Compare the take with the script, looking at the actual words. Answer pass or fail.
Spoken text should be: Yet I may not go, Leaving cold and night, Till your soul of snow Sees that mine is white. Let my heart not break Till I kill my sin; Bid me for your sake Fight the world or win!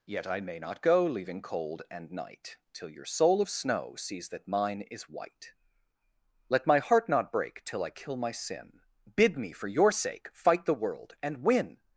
fail